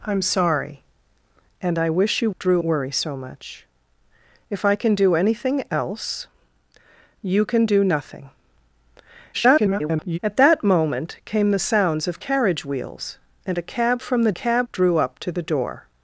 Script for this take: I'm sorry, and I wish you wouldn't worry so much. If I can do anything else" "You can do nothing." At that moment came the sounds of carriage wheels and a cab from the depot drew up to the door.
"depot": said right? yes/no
no